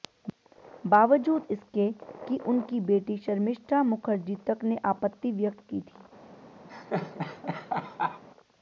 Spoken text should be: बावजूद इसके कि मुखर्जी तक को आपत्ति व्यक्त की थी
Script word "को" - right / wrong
wrong